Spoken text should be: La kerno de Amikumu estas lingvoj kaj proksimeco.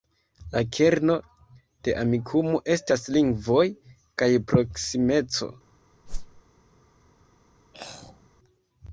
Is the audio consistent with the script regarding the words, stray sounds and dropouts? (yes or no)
no